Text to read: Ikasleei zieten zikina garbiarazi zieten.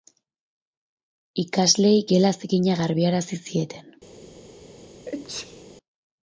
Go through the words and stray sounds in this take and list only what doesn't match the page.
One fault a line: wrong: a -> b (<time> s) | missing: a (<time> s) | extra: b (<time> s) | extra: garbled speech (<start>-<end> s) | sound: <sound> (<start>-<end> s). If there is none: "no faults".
wrong: zieten -> gela (2.2 s)
sound: sneeze (5.1-5.6 s)